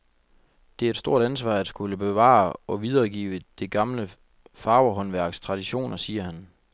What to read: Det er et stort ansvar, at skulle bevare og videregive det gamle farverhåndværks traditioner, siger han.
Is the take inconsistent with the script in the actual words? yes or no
no